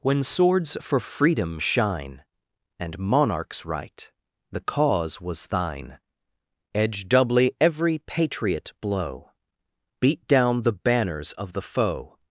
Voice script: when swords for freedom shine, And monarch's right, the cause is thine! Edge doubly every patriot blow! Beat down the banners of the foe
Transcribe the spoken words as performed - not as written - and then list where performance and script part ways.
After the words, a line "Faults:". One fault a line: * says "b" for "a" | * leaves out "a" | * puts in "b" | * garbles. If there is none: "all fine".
when swords for freedom shine, And monarch's right, the cause was thine! Edge doubly every patriot blow! Beat down the banners of the foe
Faults:
* says "was" for "is"